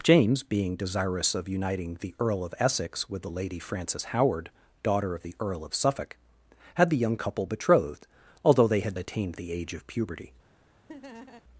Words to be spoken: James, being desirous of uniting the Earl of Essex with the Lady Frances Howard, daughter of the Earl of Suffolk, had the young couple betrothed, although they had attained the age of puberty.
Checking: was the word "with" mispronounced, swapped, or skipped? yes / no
no